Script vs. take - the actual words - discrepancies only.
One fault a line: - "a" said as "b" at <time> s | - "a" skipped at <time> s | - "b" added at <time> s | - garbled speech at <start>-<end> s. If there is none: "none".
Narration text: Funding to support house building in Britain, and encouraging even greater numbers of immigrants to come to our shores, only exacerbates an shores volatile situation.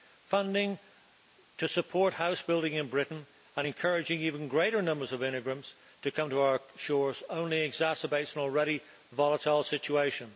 - "shores" said as "already" at 8.4 s